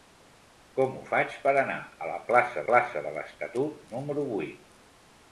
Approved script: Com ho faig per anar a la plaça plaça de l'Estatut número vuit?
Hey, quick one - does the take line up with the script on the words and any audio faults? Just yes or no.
yes